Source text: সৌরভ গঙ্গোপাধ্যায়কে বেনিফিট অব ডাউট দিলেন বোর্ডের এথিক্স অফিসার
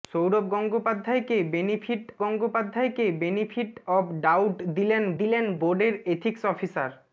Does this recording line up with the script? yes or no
no